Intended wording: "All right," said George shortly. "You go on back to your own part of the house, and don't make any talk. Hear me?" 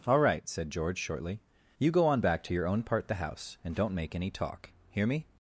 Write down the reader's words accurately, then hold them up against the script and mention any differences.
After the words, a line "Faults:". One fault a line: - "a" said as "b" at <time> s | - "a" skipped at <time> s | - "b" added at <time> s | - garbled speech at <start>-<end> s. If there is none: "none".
"All right," said George shortly. "You go on back to your own part the house, and don't make any talk. Hear me?"
Faults:
- "of" skipped at 3.1 s